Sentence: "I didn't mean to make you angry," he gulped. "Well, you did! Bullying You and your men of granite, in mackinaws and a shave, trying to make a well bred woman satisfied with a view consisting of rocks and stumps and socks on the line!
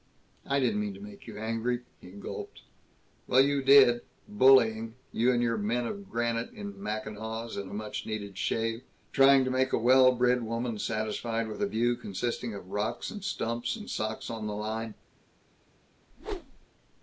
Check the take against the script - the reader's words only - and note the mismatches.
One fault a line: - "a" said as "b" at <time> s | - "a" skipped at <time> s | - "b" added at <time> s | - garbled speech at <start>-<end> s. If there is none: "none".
- "much needed" added at 7.8 s